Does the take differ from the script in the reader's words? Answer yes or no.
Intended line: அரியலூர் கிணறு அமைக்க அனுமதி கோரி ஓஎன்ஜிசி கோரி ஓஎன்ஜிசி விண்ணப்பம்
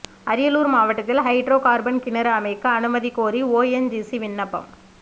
yes